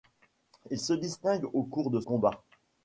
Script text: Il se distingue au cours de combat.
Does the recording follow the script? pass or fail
pass